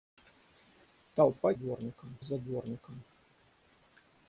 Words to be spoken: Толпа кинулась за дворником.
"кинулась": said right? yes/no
no